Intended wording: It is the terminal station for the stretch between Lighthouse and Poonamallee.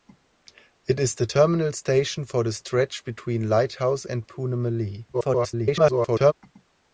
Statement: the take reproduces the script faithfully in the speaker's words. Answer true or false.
false